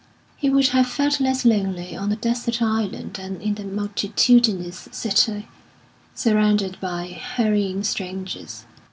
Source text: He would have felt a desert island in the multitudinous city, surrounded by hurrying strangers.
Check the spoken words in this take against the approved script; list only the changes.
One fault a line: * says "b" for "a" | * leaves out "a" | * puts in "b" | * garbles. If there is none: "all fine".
* puts in "less lonely on"
* puts in "than"